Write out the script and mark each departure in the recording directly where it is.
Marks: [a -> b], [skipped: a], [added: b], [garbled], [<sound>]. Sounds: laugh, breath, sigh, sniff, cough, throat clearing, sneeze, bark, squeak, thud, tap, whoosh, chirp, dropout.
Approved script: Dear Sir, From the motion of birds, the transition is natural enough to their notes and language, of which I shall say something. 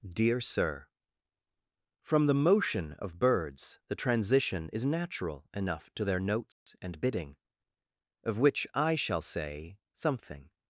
Dear Sir, From the motion of birds, the transition is natural enough to their notes [dropout] and [language, -> bidding] of which I shall say something.